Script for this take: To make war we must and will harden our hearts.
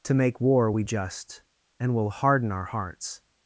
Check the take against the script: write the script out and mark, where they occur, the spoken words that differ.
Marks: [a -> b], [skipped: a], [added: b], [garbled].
To make war we [must -> just] and will harden our hearts.